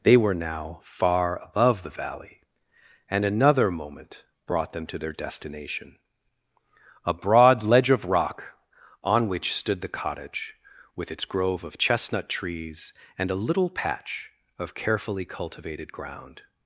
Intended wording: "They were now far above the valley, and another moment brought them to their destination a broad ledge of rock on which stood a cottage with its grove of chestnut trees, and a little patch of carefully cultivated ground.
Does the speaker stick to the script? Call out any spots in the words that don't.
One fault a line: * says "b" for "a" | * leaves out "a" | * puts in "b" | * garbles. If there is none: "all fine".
* says "the" for "a"